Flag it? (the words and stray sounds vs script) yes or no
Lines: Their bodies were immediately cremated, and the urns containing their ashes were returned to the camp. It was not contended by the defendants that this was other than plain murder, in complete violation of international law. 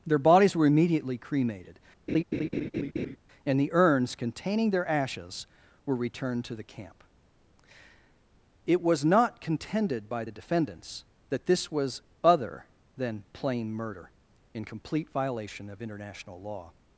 yes